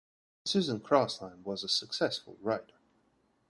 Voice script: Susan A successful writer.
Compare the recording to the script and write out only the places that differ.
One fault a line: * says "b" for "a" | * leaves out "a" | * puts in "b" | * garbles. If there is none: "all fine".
* puts in "Crosland was"